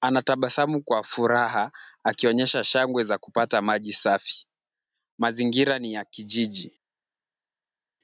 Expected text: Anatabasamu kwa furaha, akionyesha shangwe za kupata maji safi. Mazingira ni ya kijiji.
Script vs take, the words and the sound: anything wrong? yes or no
no